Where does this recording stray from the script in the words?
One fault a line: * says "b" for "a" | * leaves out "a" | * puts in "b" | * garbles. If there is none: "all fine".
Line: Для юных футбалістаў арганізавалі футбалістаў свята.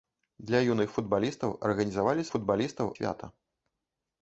all fine